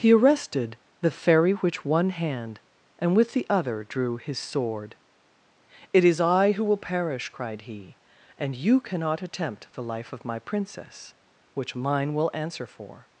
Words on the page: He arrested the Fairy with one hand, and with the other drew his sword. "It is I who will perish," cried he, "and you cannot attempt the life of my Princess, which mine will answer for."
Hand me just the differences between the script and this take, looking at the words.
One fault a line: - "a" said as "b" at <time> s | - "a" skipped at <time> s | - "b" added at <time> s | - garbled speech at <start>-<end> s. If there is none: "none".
- "with" said as "which" at 1.5 s